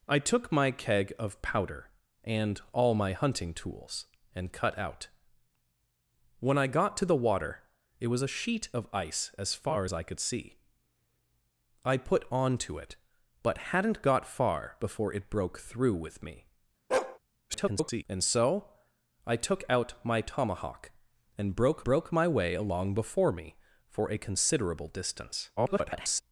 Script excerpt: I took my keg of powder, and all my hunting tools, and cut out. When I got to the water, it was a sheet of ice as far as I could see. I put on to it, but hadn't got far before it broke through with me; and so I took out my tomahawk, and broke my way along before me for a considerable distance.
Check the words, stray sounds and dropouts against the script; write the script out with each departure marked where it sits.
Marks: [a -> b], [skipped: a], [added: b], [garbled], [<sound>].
I took my keg of powder, and all my hunting tools, and cut out. When I got to the water, it was a sheet of ice as far as I could see. I put on to it, but hadn't got far before it broke through with me; [bark] [garbled] and so I took out my tomahawk, and broke [added: broke] my way along before me for a considerable distance. [garbled]